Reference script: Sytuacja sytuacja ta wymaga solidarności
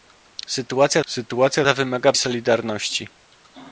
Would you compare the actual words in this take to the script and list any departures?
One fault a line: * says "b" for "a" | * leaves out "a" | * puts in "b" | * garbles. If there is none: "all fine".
all fine